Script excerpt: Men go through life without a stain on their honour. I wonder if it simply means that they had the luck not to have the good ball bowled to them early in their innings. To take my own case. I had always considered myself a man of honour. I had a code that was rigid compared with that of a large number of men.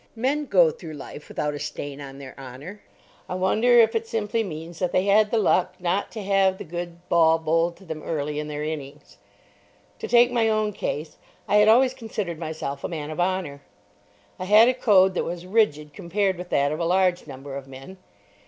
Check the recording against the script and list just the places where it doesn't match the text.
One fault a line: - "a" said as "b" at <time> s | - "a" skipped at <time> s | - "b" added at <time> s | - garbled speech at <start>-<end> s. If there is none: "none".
none